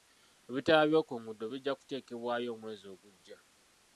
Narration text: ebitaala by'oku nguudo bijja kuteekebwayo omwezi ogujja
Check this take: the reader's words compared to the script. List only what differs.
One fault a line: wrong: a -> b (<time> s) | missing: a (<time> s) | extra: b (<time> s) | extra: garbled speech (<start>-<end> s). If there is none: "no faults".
no faults